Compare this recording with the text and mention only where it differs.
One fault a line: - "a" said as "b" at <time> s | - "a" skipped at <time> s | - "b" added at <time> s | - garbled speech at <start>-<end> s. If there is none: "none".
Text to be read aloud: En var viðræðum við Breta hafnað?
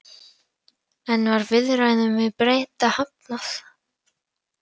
none